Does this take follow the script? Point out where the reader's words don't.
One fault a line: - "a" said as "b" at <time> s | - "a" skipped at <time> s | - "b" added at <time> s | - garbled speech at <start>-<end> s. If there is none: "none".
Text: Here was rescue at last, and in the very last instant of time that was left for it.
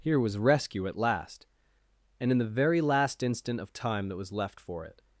none